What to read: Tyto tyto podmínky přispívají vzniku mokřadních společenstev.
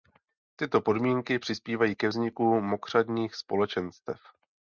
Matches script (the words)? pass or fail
fail